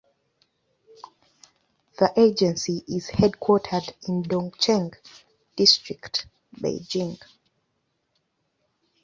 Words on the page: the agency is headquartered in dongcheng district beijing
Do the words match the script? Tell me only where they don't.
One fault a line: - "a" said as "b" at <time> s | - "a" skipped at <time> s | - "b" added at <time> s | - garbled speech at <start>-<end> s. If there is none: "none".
none